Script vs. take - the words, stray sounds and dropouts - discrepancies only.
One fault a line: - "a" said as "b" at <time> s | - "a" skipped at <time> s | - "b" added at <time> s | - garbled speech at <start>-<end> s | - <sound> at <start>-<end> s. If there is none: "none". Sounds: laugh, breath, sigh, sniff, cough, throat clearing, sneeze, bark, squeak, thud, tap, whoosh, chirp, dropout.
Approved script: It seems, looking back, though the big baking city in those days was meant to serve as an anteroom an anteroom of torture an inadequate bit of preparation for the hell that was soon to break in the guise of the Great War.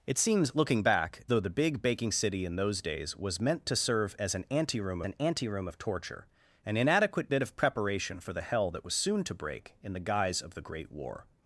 none